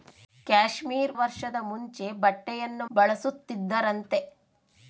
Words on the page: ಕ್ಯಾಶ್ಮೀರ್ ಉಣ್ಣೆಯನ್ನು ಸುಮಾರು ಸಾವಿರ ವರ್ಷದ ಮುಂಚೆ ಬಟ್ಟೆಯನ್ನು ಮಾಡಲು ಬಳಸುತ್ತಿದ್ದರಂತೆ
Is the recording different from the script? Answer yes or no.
yes